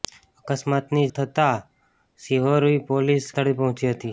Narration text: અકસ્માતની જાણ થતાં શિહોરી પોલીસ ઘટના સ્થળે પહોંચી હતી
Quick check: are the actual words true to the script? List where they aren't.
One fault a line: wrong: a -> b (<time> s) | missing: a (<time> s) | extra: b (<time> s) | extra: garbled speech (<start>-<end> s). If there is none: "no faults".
missing: જાણ (1.0 s)
missing: ઘટના (3.3 s)